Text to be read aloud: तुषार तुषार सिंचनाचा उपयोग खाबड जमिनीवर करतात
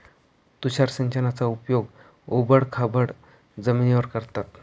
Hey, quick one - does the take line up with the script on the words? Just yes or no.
no